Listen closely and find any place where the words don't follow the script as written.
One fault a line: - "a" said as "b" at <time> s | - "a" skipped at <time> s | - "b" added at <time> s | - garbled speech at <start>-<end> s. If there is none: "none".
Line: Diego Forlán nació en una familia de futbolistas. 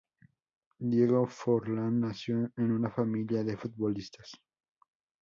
none